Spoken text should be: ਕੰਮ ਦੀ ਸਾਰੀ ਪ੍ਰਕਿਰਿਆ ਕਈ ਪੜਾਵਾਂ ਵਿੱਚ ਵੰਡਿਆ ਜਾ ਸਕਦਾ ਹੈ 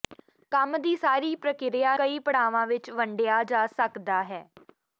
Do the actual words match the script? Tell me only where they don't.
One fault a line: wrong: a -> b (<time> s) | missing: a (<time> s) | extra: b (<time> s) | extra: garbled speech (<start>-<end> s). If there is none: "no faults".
no faults